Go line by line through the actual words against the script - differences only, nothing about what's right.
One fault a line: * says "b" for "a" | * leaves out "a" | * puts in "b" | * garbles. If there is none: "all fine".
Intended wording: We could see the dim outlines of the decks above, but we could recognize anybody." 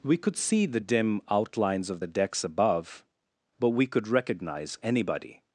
all fine